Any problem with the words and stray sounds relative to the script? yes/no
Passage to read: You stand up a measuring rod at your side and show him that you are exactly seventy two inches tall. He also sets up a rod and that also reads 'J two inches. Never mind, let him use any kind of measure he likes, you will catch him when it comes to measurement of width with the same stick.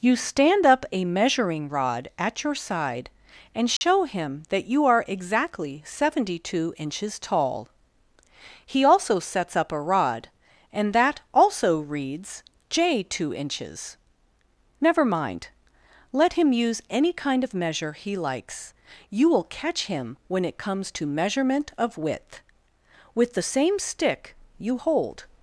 yes